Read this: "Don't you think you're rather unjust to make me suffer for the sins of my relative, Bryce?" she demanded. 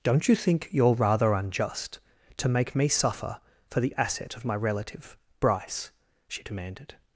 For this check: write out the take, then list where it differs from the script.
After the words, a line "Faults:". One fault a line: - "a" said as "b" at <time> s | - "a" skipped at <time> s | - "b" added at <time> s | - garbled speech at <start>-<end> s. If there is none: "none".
"Don't you think you're rather unjust to make me suffer for the asset of my relative, Bryce?" she demanded.
Faults:
- "sins" said as "asset" at 4.0 s